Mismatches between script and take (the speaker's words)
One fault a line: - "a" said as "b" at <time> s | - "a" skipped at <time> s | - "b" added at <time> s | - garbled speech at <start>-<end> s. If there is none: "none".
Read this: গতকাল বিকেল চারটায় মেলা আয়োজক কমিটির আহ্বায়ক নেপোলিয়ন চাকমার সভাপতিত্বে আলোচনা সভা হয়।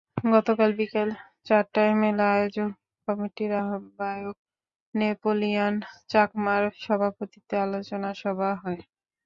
none